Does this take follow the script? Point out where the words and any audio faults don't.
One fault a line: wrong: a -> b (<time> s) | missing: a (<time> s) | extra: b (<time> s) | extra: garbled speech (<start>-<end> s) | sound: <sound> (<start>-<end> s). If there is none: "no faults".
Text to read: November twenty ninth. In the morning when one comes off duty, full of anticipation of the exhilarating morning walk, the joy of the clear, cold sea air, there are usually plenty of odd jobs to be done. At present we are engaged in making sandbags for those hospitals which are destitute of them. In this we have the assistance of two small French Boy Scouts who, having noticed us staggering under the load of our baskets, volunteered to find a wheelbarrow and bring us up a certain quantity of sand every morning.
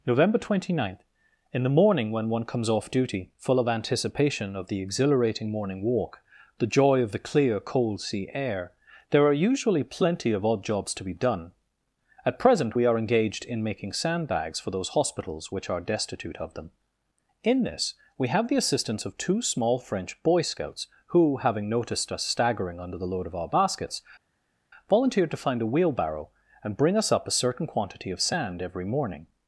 no faults